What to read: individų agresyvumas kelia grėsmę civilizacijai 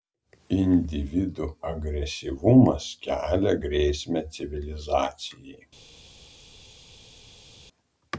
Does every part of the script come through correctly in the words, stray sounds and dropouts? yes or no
yes